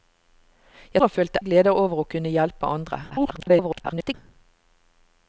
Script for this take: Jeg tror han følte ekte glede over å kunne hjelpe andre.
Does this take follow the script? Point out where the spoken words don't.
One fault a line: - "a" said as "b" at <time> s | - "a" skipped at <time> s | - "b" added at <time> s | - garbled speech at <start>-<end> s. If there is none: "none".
- "tror" skipped at 1.0 s
- "ekte" skipped at 1.4 s
- garbled speech at 3.1-4.1 s